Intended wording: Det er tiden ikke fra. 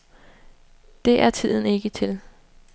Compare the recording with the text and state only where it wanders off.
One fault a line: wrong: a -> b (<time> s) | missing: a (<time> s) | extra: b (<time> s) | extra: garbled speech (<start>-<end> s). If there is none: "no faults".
wrong: fra -> til (1.9 s)